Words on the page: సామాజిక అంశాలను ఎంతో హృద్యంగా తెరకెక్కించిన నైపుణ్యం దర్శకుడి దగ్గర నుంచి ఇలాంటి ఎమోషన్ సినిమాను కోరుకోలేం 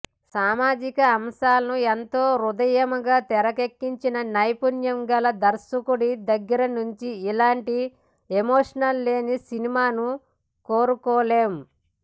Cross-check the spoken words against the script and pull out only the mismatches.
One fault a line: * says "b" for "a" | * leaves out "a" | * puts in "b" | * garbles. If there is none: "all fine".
* puts in "గల"
* puts in "లేని"